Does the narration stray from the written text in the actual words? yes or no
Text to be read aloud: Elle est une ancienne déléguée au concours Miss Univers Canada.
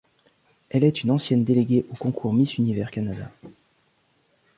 no